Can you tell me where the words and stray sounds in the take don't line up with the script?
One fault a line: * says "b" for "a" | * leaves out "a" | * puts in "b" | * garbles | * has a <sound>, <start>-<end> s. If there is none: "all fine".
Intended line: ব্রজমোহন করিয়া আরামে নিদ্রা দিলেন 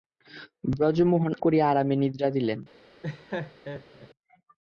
* has a laugh, 3.0-4.1 s